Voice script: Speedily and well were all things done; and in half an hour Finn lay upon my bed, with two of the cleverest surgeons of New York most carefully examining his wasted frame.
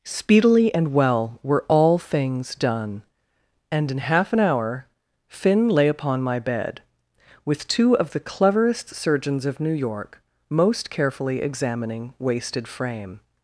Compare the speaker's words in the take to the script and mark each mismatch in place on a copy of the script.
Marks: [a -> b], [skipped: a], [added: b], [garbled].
Speedily and well were all things done; and in half an hour Finn lay upon my bed, with two of the cleverest surgeons of New York most carefully examining [skipped: his] wasted frame.